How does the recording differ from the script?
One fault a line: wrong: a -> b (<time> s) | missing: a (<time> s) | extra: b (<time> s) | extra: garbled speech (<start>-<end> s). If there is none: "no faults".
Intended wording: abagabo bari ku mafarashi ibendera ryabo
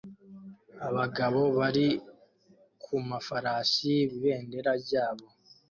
no faults